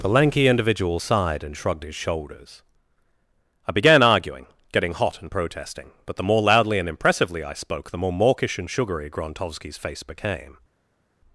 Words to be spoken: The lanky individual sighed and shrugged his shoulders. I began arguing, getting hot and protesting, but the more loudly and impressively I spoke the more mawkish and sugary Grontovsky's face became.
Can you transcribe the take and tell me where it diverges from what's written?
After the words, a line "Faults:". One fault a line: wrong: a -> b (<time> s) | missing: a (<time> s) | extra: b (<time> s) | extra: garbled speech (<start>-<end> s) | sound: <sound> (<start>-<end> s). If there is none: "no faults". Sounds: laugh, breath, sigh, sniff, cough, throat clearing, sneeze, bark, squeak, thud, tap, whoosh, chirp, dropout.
The lanky individual sighed and shrugged his shoulders. I began arguing, getting hot and protesting, but the more loudly and impressively I spoke the more mawkish and sugary Grontovsky's face became.
Faults:
no faults